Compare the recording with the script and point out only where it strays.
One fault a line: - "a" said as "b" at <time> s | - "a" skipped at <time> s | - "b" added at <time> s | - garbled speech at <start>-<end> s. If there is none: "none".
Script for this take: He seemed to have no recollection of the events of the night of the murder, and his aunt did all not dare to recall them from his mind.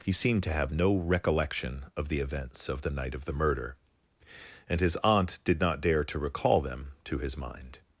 - "all" skipped at 5.6 s
- "from" said as "to" at 7.0 s